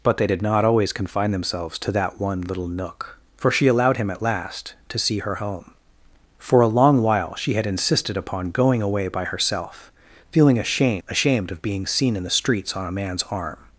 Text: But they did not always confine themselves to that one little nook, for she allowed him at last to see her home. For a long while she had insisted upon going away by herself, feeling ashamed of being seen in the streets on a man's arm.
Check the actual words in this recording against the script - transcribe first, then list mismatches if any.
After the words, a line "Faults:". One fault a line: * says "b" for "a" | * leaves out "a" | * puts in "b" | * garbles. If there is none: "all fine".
But they did not always confine themselves to that one little nook, for she allowed him at last to see her home. For a long while she had insisted upon going away by herself, feeling ashamed ashamed of being seen in the streets on a man's arm.
Faults:
* puts in "ashamed"